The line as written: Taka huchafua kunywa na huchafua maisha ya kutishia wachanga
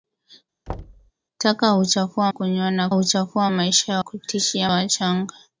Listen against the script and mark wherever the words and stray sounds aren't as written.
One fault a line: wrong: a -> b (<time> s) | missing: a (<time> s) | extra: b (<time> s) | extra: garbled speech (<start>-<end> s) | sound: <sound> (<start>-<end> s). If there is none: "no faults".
sound: thud (0.7-1.1 s)